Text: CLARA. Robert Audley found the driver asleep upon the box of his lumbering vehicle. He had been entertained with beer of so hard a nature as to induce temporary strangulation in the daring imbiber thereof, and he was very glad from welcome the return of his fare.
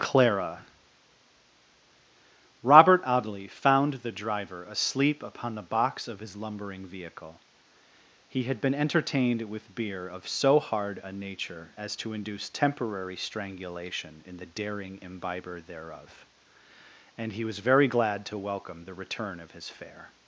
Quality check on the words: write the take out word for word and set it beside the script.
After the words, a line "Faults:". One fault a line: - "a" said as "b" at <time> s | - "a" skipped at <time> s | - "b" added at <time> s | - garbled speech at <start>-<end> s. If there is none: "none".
CLARA. Robert Audley found the driver asleep upon the box of his lumbering vehicle. He had been entertained with beer of so hard a nature as to induce temporary strangulation in the daring imbiber thereof, and he was very glad to welcome the return of his fare.
Faults:
- "from" said as "to" at 18.3 s